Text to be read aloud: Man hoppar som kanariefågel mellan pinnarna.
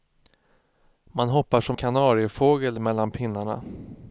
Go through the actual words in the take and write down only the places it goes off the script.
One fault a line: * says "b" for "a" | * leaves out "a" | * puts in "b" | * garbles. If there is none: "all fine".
all fine